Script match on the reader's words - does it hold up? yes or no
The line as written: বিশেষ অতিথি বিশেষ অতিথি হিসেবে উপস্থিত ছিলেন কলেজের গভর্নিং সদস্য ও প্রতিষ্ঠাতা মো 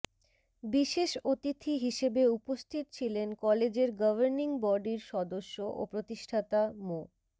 no